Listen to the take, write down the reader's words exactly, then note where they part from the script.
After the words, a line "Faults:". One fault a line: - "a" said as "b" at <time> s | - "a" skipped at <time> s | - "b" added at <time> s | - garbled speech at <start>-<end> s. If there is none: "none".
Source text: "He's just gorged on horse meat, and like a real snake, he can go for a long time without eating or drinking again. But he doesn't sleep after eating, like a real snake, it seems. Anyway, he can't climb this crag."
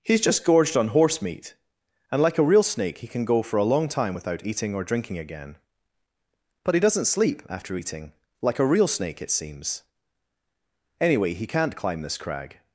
"He's just gorged on horse meat, and like a real snake, he can go for a long time without eating or drinking again. But he doesn't sleep after eating, like a real snake, it seems. Anyway, he can't climb this crag."
Faults:
none